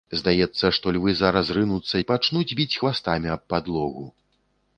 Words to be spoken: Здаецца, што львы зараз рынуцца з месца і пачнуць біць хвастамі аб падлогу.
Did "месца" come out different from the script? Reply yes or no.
yes